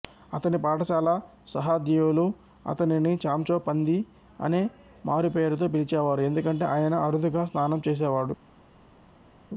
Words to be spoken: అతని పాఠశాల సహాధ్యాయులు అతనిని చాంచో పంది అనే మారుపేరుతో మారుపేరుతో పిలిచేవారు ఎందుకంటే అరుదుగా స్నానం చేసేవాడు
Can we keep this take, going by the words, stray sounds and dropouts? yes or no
no